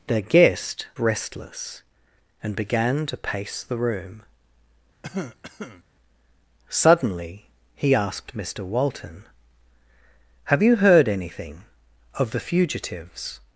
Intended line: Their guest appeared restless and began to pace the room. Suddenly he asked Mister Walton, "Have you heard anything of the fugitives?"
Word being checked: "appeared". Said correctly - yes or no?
no